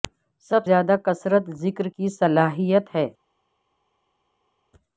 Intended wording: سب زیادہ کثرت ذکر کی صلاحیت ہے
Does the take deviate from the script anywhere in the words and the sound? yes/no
no